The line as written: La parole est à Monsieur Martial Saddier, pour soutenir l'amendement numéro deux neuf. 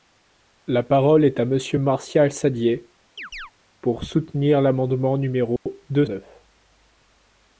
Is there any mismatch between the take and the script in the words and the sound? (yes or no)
yes